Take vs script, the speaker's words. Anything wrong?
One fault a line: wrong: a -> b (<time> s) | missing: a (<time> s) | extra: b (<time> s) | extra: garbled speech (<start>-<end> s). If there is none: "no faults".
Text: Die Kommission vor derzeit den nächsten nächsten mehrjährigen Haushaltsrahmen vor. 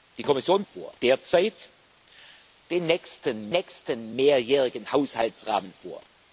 no faults